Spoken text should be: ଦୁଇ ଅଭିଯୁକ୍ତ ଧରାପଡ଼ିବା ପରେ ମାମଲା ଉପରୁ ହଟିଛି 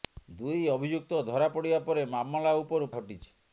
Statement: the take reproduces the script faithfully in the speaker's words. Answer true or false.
true